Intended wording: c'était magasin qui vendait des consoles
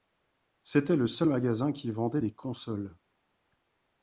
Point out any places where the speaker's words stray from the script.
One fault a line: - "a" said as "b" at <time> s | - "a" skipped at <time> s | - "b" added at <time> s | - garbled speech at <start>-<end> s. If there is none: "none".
- "le seul" added at 0.9 s